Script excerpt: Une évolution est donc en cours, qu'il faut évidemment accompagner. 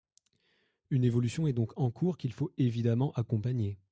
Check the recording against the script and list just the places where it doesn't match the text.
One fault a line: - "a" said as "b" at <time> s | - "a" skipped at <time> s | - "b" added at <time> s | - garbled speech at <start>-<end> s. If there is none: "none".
none